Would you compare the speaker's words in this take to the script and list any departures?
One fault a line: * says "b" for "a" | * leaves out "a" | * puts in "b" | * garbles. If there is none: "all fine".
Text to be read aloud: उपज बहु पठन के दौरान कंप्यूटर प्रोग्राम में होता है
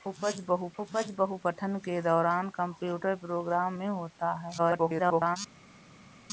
* puts in "उपज बहु"
* garbles